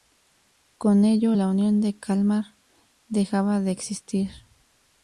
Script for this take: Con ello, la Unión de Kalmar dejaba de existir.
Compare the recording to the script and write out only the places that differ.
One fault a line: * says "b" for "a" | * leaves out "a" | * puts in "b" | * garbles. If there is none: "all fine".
all fine